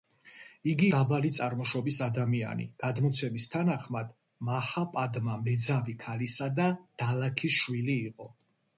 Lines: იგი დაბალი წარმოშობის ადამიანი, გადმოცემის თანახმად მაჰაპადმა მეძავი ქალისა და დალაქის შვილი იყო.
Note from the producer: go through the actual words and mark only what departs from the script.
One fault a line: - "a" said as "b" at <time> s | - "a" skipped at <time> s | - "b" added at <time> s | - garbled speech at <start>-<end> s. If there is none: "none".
none